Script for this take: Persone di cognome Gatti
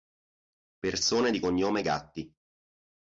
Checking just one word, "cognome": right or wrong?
right